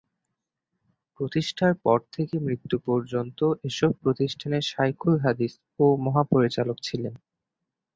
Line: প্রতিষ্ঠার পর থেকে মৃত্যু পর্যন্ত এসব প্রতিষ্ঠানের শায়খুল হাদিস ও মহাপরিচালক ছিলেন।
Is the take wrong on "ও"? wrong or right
right